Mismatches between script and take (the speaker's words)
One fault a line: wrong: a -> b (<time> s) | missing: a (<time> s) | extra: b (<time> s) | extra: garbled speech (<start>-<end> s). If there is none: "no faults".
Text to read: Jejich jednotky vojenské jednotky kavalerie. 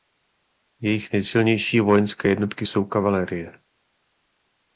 wrong: jednotky -> nejsilnější (1.1 s)
extra: jsou (2.6 s)